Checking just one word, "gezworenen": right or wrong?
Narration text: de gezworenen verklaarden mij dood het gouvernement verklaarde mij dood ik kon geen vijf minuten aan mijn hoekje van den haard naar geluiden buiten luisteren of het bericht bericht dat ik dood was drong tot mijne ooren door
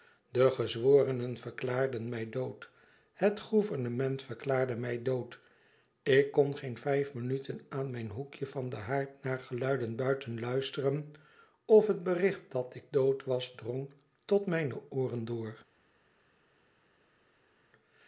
right